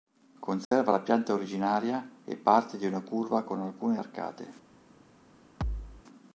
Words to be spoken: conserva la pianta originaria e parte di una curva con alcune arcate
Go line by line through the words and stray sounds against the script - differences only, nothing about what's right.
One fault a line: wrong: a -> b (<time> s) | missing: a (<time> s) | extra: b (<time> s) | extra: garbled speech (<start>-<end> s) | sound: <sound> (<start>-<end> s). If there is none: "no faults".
sound: dropout (0.6-0.7 s)
sound: thud (5.6-6.0 s)